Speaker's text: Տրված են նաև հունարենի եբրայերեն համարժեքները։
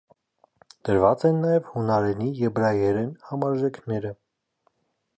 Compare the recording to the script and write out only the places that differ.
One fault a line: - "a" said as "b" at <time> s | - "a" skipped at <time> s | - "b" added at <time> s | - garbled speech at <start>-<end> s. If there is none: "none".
none